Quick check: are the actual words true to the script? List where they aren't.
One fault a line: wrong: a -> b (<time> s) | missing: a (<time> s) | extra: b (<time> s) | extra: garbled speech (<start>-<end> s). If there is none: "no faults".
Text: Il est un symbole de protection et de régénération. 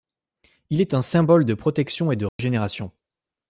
no faults